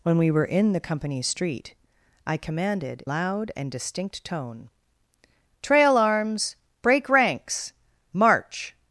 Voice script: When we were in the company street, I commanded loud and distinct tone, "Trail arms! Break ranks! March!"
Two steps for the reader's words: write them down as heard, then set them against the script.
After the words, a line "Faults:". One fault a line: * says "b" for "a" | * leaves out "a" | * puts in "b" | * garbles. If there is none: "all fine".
When we were in the company street, I commanded loud and distinct tone, "Trail arms! Break ranks! March!"
Faults:
all fine